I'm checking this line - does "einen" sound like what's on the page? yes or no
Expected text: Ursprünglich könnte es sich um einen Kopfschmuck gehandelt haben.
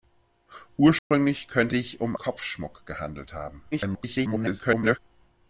no